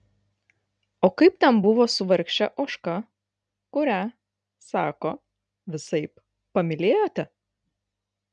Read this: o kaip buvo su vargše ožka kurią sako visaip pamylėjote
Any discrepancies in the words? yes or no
yes